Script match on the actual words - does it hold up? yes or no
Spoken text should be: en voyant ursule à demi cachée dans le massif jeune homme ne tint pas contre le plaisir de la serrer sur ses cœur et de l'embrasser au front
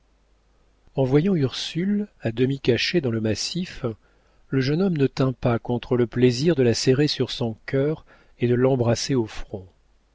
no